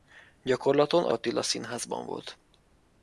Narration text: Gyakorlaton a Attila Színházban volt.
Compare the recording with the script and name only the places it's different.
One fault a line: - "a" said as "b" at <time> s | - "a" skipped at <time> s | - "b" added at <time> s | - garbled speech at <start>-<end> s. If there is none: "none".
none